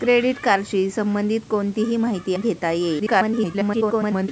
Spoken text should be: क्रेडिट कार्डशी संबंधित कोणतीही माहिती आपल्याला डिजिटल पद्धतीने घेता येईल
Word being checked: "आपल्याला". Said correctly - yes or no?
no